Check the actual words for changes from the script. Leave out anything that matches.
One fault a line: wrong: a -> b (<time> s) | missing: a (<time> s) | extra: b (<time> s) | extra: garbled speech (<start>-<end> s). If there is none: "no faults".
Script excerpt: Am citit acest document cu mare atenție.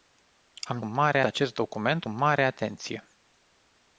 wrong: citit -> mare (0.8 s)
missing: cu (2.0 s)